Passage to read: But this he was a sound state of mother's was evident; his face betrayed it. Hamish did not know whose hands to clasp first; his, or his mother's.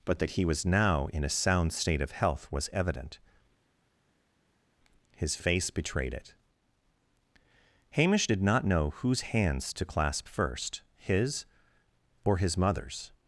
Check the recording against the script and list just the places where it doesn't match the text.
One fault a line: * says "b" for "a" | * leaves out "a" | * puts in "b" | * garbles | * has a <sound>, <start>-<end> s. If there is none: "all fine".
* says "that" for "this"
* puts in "now in"
* says "health" for "mother's"